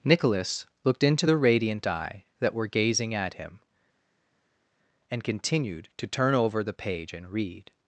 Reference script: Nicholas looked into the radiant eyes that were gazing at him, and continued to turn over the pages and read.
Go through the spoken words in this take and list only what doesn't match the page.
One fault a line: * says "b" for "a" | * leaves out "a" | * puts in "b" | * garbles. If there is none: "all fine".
* says "eye" for "eyes"
* says "page" for "pages"